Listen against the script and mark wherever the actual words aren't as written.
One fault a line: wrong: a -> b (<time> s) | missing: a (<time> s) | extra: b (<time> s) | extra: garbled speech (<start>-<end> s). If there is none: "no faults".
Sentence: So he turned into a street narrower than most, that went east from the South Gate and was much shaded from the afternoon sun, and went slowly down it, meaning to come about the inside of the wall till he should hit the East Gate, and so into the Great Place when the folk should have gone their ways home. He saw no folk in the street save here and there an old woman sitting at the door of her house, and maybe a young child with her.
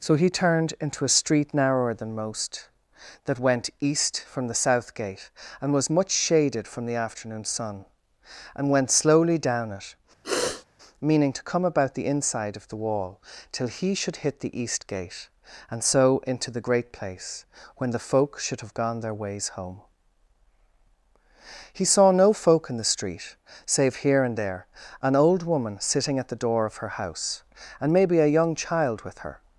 no faults